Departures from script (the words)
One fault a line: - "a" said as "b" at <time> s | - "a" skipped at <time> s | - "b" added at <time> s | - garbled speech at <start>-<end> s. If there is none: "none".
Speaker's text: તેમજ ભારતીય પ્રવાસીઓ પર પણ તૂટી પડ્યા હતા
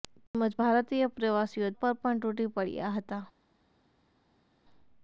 none